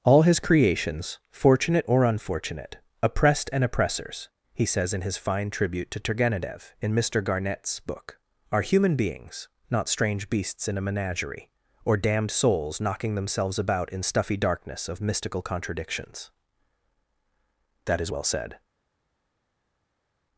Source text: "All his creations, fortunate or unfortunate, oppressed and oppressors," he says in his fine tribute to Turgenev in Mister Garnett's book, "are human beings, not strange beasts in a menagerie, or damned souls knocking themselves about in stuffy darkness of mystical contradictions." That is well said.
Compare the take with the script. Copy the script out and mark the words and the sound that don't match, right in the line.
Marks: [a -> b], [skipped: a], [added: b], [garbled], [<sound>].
"All his creations, fortunate or unfortunate, oppressed and oppressors," he says in his fine tribute to Turgenev in Mister Garnett's book, "are human beings, not strange beasts in a menagerie, or damned souls knocking themselves about in stuffy darkness of mystical contradictions." That is well said.